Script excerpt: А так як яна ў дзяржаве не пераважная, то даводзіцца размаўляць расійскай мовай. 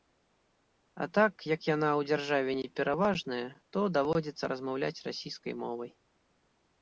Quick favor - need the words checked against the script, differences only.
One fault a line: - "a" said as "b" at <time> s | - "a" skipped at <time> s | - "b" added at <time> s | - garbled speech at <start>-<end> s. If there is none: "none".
none